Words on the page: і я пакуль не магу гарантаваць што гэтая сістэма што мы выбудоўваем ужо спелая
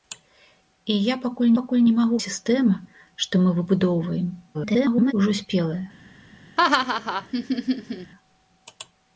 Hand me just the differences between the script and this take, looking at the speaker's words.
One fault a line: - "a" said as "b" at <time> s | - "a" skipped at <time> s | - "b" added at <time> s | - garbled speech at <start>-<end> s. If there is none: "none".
- "пакуль" added at 1.6 s
- "гарантаваць што гэтая" skipped at 2.2 s
- garbled speech at 4.5-5.1 s